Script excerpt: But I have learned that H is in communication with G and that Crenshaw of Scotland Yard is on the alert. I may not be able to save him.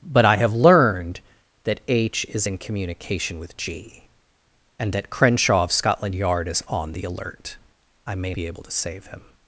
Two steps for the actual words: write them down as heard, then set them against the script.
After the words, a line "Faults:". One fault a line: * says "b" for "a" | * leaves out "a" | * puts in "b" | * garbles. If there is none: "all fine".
But I have learned that H is in communication with G and that Crenshaw of Scotland Yard is on the alert. I may be able to save him.
Faults:
* leaves out "not"